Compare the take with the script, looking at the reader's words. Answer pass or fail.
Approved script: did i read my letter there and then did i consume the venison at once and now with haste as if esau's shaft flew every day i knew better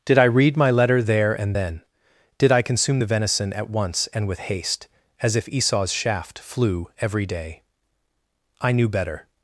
fail